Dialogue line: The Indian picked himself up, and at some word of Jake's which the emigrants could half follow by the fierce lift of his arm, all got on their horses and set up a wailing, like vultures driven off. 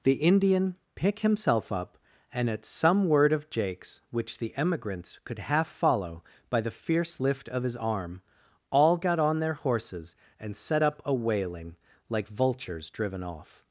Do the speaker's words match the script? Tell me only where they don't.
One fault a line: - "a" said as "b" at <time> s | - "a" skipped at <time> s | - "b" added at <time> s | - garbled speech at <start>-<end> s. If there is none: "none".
- "picked" said as "pick" at 0.9 s